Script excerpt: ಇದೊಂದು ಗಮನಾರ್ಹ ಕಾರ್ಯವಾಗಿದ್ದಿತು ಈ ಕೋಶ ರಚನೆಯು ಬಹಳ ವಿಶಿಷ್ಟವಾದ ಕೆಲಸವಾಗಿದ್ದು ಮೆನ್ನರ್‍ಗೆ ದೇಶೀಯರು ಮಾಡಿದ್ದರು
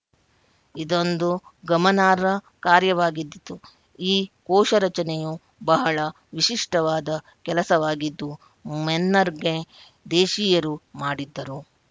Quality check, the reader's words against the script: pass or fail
pass